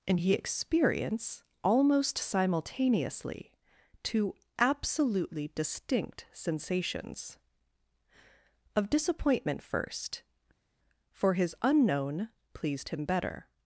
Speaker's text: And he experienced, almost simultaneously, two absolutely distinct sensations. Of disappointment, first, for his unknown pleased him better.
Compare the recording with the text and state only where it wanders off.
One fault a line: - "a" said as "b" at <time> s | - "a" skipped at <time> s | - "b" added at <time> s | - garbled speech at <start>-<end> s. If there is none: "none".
- "experienced" said as "experience" at 0.3 s